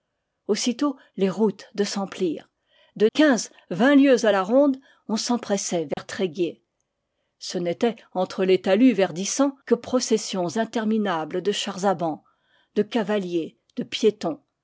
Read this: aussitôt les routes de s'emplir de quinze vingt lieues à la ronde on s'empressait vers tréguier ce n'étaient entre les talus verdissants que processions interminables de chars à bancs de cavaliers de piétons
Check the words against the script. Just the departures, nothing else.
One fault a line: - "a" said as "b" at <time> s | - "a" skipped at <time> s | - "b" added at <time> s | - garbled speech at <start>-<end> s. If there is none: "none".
none